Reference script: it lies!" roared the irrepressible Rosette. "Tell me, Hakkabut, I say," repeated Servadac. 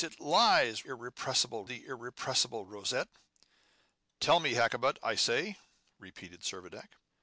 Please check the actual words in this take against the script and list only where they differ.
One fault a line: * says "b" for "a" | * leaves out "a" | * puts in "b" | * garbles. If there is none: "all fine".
* says "irrepressible" for "roared"